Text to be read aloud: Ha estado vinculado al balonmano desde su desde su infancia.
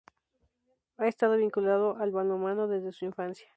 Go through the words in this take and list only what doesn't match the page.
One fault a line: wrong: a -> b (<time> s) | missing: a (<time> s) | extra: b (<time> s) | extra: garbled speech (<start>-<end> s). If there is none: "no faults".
missing: desde su (3.0 s)